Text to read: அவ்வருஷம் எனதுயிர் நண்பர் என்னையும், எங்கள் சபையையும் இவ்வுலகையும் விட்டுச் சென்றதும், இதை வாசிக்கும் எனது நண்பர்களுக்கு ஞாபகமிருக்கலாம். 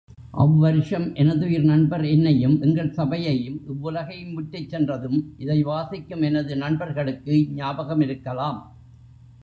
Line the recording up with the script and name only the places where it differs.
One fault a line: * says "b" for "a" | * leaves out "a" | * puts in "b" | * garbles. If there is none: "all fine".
all fine